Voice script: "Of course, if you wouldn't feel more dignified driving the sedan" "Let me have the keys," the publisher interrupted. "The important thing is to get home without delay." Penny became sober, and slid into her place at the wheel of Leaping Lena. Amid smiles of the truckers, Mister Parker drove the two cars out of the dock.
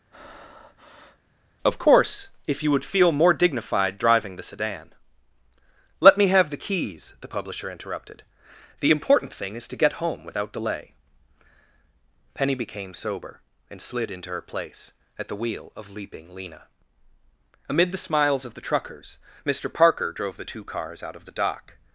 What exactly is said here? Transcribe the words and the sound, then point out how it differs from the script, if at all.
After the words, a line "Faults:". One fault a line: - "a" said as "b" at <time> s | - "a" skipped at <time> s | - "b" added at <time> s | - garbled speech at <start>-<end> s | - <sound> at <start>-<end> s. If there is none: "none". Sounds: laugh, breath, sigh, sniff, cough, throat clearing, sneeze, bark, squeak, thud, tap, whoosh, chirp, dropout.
"Of course, if you would feel more dignified driving the sedan" "Let me have the keys," the publisher interrupted. "The important thing is to get home without delay." Penny became sober, and slid into her place at the wheel of Leaping Lena. Amid the smiles of the truckers, Mister Parker drove the two cars out of the dock.
Faults:
- breath at 0.1-1.2 s
- "wouldn't" said as "would" at 2.7 s
- "the" added at 17.9 s